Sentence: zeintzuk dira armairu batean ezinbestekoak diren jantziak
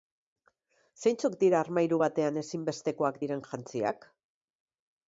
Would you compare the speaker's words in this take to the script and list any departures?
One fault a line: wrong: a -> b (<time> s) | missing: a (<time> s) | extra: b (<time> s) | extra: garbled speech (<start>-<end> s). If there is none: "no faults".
no faults